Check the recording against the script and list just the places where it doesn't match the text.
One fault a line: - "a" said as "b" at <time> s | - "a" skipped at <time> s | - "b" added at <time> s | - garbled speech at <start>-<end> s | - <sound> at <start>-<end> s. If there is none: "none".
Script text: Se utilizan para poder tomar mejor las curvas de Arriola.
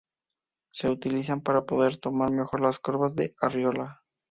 none